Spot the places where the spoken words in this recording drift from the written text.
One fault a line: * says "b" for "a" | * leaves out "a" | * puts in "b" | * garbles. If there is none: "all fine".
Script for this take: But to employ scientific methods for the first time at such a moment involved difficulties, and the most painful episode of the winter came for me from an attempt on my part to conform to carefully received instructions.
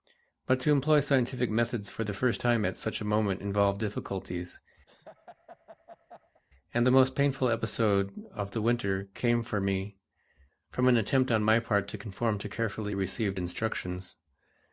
all fine